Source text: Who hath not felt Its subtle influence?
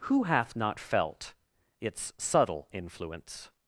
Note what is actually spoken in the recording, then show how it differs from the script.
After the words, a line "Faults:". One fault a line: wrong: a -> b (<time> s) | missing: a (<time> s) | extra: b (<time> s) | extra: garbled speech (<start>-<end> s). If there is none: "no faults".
Who hath not felt Its subtle influence?
Faults:
no faults